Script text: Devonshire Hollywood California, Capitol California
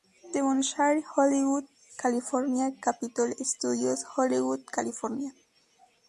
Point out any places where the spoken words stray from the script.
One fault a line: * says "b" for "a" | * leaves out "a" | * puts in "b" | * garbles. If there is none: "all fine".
* puts in "Studios Hollywood"